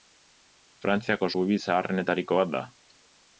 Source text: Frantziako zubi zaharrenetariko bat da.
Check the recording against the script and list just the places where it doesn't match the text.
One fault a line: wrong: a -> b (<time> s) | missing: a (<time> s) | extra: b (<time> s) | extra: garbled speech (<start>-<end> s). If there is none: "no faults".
no faults